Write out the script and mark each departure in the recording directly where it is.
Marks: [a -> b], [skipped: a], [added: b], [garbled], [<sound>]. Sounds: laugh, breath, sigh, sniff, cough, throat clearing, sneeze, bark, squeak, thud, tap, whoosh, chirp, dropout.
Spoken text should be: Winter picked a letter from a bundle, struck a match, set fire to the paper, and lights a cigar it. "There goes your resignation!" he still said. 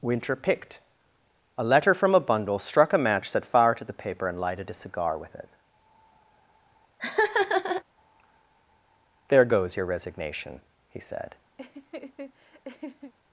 Winter picked a letter from a bundle, struck a match, set fire to the paper, and [lights -> lighted] a cigar [added: with] it. [laugh] "There goes your resignation!" he [skipped: still] said. [laugh]